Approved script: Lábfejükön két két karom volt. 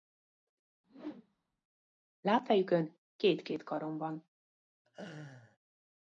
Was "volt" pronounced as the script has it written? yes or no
no